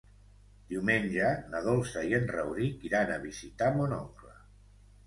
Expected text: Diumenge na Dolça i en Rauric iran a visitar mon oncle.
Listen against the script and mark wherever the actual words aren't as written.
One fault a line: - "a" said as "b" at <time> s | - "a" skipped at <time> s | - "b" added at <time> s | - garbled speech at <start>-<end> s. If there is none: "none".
none